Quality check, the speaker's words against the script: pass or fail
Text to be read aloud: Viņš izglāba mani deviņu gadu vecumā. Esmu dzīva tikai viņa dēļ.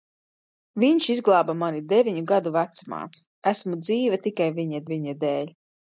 fail